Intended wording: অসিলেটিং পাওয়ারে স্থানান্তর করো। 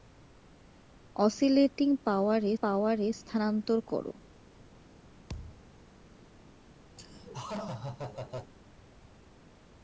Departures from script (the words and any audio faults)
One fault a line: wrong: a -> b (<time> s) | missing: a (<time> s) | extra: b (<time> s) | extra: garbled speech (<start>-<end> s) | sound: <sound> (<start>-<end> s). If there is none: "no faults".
extra: পাওয়ারে (2.6 s)
sound: thud (5.3-5.7 s)
sound: laugh (7.0-8.5 s)